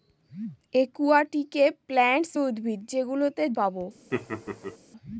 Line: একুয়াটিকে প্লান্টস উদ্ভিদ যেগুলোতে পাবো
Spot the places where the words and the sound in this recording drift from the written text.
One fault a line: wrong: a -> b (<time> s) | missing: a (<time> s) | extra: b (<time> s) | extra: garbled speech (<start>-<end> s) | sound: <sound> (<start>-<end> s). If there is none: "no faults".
sound: laugh (4.1-4.8 s)